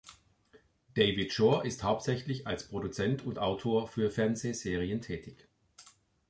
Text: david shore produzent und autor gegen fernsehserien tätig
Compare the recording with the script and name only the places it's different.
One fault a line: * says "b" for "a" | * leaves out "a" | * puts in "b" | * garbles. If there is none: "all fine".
* puts in "ist hauptsächlich als"
* says "für" for "gegen"